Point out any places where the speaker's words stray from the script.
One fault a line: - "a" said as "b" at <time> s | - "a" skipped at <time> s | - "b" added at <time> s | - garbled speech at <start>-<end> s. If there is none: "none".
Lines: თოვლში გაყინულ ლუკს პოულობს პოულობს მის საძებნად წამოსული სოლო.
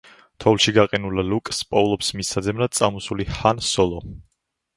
- "პოულობს" skipped at 2.1 s
- "ჰან" added at 3.4 s